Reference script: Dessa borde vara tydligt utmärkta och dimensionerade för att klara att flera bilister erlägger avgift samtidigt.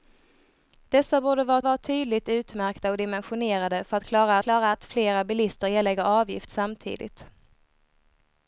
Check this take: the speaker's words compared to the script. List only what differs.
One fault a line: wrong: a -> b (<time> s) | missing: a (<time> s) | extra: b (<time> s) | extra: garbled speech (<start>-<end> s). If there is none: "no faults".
extra: vara (1.6 s)
extra: klara (4.4 s)